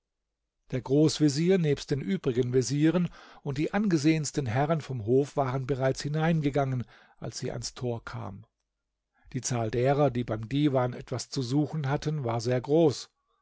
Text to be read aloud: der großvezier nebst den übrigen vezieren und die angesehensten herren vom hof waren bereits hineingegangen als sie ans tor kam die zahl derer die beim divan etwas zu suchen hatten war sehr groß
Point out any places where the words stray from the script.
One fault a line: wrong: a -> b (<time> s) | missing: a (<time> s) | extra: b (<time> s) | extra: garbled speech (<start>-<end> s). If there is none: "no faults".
no faults